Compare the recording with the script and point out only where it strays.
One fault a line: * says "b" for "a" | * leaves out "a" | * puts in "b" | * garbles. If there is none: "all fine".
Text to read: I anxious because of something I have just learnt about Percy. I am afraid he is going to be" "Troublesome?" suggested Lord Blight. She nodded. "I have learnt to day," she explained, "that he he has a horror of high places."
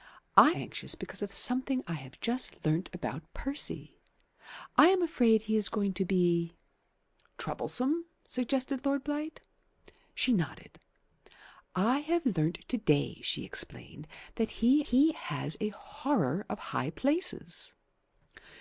all fine